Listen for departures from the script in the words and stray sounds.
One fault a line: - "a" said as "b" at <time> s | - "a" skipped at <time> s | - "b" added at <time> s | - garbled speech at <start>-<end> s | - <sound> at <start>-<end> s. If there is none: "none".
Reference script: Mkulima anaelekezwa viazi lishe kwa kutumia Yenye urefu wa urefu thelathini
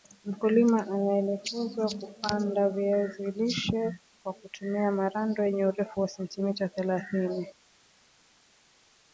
- "kupanda" added at 2.0 s
- "Marando" added at 4.9 s
- "urefu" said as "sentimita" at 6.1 s